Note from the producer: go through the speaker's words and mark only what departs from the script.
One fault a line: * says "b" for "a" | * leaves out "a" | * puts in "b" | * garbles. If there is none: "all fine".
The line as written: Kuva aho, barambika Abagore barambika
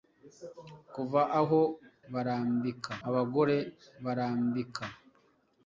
all fine